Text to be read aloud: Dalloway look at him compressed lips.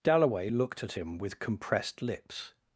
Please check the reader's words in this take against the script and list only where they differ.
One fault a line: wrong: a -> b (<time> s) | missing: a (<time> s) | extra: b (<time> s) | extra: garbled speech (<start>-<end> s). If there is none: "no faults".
wrong: look -> looked (0.5 s)
extra: with (1.2 s)